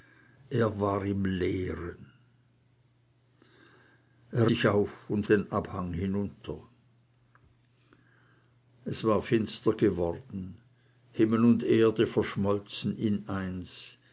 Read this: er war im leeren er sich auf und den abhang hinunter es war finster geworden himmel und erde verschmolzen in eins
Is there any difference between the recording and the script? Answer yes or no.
no